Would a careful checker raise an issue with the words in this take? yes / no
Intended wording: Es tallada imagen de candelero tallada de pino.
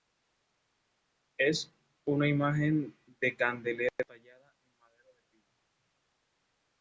yes